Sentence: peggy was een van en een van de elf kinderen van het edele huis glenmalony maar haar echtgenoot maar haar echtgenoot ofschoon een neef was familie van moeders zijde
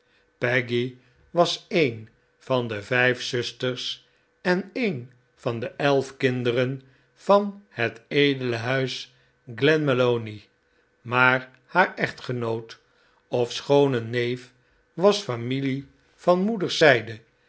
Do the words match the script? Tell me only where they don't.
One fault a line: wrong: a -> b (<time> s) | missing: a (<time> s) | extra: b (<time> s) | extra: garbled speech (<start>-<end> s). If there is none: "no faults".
extra: de vijf zusters (2.7 s)
missing: maar haar echtgenoot (12.8 s)